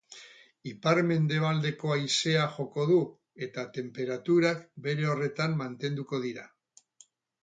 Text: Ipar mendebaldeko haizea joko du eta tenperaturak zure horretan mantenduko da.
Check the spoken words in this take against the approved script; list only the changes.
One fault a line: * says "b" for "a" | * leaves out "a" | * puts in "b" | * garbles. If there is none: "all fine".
* says "bere" for "zure"
* says "dira" for "da"